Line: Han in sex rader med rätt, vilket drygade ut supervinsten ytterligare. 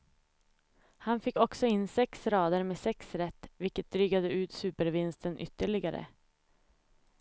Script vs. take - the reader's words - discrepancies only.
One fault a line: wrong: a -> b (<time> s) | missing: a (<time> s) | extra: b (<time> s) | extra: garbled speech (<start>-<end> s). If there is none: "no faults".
extra: fick också (1.2 s)
extra: sex (2.8 s)